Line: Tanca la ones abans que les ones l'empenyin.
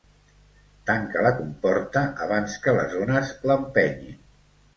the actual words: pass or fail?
fail